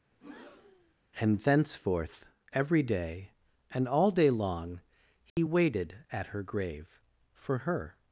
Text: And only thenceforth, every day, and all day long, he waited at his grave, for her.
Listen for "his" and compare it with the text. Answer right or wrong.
wrong